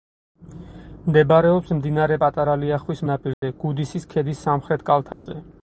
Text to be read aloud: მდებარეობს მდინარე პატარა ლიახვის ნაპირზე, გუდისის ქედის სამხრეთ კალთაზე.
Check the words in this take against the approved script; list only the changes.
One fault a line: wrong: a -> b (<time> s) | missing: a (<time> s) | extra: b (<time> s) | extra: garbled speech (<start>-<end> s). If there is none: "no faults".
no faults